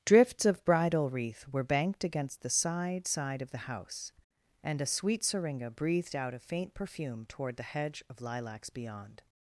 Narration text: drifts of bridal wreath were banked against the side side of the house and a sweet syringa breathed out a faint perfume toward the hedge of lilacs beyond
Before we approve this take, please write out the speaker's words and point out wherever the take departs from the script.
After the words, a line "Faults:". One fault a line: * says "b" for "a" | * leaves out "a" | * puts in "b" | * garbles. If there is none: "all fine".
drifts of bridal wreath were banked against the side side of the house and a sweet syringa breathed out a faint perfume toward the hedge of lilacs beyond
Faults:
all fine